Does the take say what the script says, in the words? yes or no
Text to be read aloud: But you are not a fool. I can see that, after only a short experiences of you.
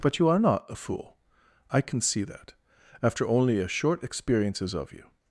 yes